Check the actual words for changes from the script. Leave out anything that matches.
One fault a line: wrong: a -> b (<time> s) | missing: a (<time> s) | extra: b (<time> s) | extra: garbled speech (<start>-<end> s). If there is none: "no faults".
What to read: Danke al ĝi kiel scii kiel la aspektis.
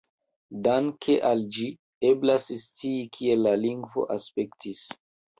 wrong: kiel -> eblas (2.1 s)
extra: lingvo (3.6 s)